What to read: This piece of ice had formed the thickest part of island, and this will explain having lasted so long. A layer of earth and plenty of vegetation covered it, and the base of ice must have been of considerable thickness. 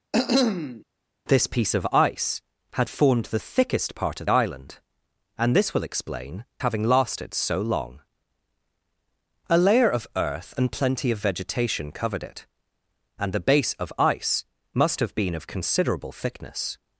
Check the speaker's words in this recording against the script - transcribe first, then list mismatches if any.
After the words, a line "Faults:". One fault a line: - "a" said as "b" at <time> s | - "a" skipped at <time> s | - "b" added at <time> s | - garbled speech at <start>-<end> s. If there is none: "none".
This piece of ice had formed the thickest part of island, and this will explain having lasted so long. A layer of earth and plenty of vegetation covered it, and the base of ice must have been of considerable thickness.
Faults:
none